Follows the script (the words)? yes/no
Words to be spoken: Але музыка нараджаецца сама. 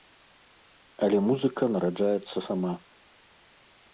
yes